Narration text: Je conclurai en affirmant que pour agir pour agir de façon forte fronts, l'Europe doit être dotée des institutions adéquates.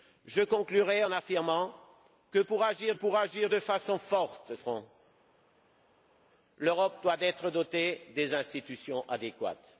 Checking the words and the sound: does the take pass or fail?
pass